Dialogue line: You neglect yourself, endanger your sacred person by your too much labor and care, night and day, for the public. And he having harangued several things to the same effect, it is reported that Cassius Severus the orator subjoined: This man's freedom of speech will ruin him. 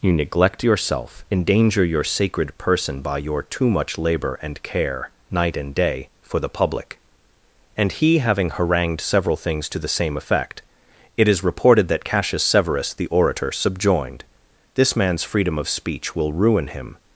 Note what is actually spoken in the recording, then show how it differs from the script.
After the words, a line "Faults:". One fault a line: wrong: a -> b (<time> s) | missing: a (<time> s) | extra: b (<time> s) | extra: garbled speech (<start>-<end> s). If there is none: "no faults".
You neglect yourself, endanger your sacred person by your too much labor and care, night and day, for the public. And he having harangued several things to the same effect, it is reported that Cassius Severus the orator subjoined: This man's freedom of speech will ruin him.
Faults:
no faults